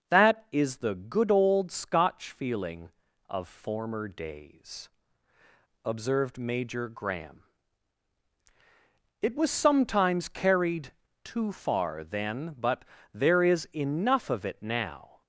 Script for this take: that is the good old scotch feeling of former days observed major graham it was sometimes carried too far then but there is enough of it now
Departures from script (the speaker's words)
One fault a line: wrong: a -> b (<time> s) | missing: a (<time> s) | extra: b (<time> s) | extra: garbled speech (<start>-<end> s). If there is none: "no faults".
no faults